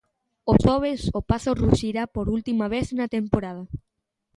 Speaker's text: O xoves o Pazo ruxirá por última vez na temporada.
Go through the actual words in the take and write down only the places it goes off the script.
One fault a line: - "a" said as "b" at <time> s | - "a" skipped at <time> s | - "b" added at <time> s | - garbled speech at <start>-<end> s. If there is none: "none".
none